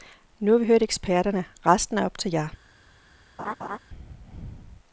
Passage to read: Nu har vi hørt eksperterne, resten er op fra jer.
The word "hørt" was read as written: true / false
true